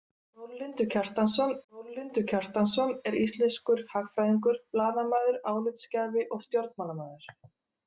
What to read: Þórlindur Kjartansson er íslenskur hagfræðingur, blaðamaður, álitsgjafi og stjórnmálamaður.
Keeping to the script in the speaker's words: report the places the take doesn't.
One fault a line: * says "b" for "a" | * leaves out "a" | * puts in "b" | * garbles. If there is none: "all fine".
* puts in "þórlindur Kjartansson"